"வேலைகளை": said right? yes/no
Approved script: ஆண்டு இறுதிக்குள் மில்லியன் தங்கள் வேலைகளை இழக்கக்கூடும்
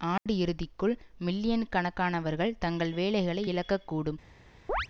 yes